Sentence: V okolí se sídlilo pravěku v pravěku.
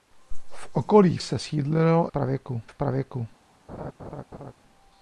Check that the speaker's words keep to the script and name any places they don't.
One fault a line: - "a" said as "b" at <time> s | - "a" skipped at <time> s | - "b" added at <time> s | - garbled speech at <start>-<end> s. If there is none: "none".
none